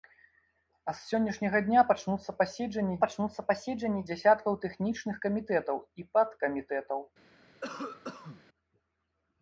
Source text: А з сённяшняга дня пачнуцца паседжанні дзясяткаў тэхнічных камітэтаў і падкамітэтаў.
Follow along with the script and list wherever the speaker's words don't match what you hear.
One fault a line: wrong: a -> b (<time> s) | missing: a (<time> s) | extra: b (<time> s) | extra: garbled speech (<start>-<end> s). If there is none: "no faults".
extra: пачнуцца паседжанні (3.0 s)